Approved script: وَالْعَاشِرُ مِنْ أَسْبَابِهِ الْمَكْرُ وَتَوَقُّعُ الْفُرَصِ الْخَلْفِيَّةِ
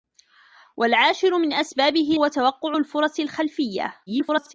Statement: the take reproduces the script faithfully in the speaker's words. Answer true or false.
false